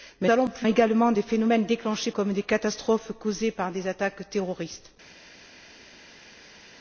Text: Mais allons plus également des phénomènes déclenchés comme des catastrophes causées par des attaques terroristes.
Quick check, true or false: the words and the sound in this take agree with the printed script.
true